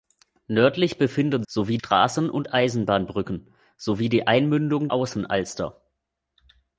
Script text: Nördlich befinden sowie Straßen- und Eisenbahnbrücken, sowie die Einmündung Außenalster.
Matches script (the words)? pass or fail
pass